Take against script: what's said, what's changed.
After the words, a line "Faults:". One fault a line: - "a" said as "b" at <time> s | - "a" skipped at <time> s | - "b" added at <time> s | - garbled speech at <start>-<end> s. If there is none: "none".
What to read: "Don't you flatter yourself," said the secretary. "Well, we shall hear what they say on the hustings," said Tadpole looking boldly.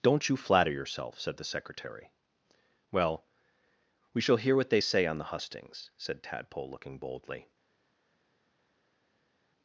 "Don't you flatter yourself," said the secretary. "Well, we shall hear what they say on the hustings," said Tadpole looking boldly.
Faults:
none